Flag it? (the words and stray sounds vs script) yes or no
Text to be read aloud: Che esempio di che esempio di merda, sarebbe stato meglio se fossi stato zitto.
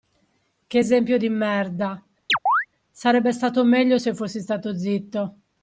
yes